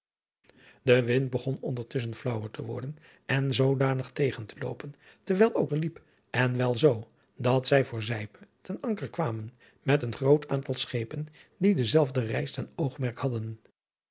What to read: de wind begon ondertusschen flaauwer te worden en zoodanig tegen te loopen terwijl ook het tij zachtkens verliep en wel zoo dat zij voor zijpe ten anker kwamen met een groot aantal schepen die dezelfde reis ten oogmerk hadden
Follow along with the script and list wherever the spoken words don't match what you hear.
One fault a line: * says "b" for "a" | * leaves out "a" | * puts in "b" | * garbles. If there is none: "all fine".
* leaves out "het tij zachtkens"